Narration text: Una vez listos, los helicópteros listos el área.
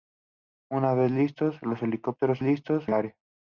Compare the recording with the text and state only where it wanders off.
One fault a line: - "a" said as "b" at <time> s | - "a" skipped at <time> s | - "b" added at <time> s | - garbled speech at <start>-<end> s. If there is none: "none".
none